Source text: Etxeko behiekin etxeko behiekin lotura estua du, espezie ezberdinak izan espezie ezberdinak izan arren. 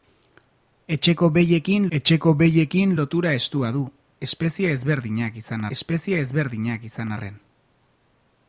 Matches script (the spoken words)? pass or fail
pass